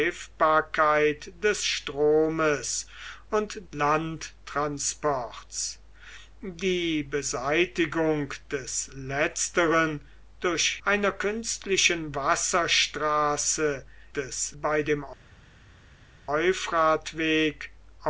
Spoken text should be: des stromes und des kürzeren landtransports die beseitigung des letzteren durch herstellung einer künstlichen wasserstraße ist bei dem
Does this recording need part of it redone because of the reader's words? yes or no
yes